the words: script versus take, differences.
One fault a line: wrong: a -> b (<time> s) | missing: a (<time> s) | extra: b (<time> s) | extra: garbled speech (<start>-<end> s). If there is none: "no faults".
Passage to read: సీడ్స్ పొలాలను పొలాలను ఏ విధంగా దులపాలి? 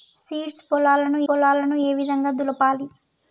no faults